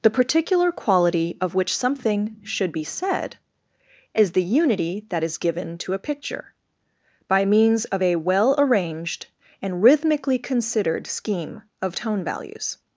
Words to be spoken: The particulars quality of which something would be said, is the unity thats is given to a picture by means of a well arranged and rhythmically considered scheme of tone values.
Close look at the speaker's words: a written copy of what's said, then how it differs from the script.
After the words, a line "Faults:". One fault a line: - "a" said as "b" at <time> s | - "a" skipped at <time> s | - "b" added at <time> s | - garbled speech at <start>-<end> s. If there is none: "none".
The particular quality of which something should be said, is the unity that is given to a picture by means of a well arranged and rhythmically considered scheme of tone values.
Faults:
- "particulars" said as "particular" at 0.1 s
- "would" said as "should" at 2.4 s
- "thats" said as "that" at 5.1 s